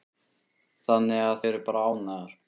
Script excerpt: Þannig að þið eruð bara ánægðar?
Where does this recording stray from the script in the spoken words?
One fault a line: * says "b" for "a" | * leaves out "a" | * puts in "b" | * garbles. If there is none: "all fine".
* leaves out "þið"